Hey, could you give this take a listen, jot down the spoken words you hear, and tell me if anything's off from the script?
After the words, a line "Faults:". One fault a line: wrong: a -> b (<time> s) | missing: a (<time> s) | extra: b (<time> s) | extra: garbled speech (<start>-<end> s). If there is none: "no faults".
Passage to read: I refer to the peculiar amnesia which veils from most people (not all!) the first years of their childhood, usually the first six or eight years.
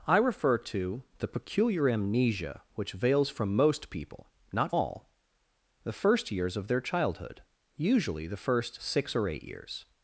I refer to the peculiar amnesia which veils from most people (not all!) the first years of their childhood, usually the first six or eight years.
Faults:
no faults